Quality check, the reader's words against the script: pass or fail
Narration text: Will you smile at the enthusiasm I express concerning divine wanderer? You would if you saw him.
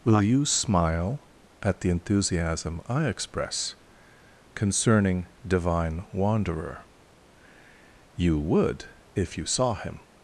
pass